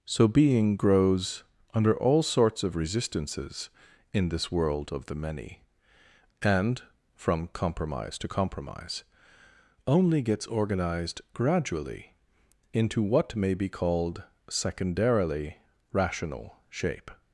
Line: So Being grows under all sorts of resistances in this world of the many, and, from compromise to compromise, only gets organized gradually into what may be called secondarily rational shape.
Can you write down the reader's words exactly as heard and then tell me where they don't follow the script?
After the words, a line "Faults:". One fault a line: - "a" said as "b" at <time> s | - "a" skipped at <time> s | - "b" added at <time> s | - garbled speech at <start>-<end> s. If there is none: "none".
So Being grows under all sorts of resistances in this world of the many, and, from compromise to compromise, only gets organized gradually into what may be called secondarily rational shape.
Faults:
none